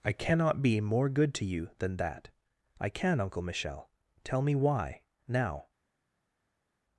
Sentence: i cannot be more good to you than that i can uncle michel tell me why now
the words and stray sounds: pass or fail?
pass